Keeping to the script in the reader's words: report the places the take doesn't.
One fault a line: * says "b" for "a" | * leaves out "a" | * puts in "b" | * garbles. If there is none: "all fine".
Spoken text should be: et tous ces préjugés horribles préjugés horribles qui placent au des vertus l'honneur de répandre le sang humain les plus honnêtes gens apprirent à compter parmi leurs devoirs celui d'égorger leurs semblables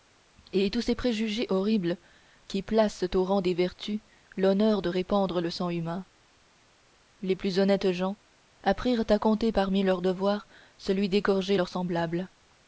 * leaves out "préjugés horribles"
* puts in "rang"